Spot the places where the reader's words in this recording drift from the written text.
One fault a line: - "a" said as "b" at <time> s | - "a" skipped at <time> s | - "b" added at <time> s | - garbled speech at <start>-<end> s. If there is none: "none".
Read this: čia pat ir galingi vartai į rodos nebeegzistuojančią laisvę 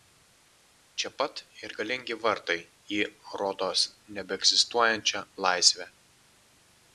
none